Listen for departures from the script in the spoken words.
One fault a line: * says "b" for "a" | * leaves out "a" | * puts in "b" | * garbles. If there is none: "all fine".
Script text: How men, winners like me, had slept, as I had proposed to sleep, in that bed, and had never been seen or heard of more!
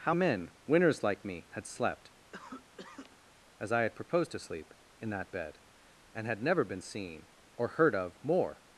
all fine